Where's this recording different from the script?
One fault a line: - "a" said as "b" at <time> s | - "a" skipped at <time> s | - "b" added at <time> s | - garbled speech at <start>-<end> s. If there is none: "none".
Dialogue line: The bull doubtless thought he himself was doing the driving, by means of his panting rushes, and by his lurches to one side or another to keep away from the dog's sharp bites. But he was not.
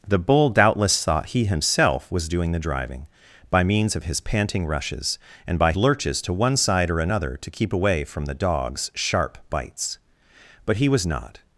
- "his" skipped at 5.7 s